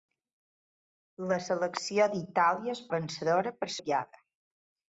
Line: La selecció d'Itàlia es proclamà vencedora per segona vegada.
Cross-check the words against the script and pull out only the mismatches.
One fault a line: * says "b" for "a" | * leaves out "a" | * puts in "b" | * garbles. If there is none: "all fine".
* leaves out "proclamà"
* leaves out "segona"